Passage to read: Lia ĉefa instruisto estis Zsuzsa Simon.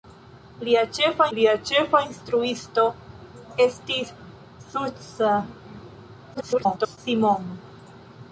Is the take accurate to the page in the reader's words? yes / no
no